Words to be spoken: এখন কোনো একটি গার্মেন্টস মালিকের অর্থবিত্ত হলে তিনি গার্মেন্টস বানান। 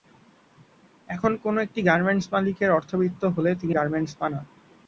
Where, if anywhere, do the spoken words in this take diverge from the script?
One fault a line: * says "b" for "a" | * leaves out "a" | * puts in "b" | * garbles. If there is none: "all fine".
all fine